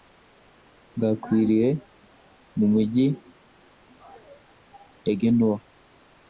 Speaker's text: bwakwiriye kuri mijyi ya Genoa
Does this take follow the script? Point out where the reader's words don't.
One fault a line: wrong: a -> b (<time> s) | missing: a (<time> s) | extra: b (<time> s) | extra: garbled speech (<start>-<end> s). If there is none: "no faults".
wrong: kuri -> mu (2.6 s)